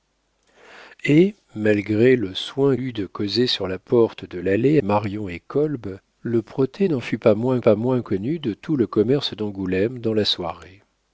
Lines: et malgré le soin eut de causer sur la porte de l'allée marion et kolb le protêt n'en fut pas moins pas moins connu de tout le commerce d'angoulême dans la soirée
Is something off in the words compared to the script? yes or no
no